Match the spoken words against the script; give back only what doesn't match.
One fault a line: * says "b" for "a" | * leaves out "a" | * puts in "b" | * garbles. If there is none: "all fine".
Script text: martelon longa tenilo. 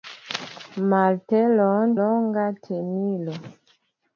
all fine